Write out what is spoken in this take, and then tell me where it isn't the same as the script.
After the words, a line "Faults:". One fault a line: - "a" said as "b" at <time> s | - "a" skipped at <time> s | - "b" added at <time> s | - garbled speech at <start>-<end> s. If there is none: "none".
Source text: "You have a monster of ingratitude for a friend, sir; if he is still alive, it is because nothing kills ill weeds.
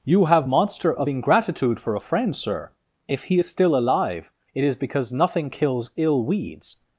"You have monster of ingratitude for a friend, sir; if he is still alive, it is because nothing kills ill weeds.
Faults:
- "a" skipped at 0.5 s